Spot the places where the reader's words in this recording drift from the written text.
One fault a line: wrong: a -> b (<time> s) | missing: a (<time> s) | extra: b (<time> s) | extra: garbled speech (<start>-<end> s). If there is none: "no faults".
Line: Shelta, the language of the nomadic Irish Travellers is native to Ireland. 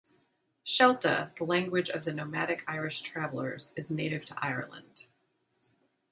no faults